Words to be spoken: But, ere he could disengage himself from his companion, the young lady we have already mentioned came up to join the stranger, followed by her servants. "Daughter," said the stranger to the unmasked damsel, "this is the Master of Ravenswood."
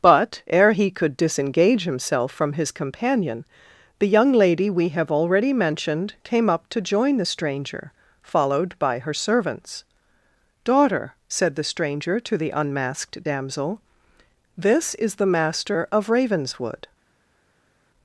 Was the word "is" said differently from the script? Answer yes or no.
no